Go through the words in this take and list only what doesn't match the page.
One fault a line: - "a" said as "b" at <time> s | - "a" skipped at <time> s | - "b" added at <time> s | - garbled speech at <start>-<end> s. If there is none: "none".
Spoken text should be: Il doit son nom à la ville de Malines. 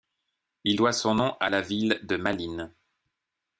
none